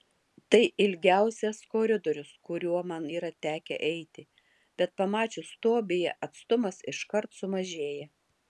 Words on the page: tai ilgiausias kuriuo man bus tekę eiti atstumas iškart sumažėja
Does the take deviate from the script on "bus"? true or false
true